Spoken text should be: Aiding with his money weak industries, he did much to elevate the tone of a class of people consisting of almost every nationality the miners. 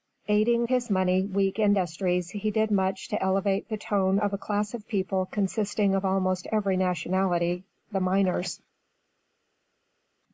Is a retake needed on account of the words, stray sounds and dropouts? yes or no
yes